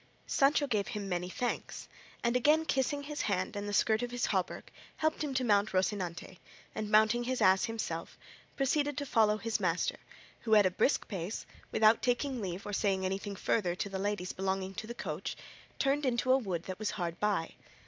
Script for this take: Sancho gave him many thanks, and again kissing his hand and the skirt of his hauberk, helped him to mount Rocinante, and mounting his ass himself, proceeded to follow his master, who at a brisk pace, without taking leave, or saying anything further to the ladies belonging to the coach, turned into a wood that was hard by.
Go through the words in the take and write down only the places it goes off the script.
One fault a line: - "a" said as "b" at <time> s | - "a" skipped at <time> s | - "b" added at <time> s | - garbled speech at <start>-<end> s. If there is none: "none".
none